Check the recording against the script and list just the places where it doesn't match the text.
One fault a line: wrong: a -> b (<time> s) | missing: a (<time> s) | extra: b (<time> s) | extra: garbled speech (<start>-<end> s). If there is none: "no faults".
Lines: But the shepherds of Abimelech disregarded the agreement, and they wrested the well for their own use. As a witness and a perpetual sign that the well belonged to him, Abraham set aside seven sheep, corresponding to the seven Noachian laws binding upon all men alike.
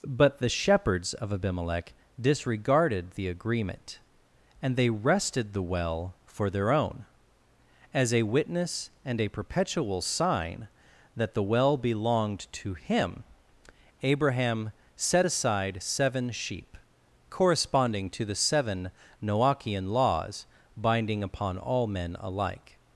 missing: use (7.0 s)